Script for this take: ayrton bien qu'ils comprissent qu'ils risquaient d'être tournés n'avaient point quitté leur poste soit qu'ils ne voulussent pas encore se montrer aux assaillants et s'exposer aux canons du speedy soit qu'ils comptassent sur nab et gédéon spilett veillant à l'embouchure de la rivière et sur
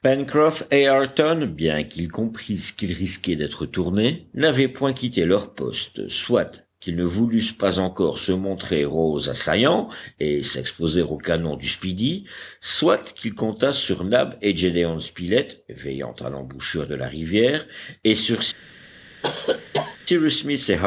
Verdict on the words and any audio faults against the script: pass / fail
fail